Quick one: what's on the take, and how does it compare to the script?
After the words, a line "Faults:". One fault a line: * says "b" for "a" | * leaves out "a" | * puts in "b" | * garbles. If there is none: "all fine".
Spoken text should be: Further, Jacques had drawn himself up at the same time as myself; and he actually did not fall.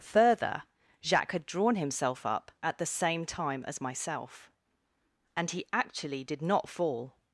Further, Jacques had drawn himself up at the same time as myself; and he actually did not fall.
Faults:
all fine